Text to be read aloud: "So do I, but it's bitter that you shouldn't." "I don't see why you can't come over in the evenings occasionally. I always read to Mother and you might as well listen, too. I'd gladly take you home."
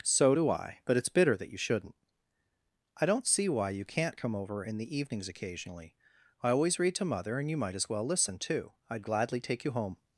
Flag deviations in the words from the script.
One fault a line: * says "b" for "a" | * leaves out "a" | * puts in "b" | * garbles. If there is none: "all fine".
all fine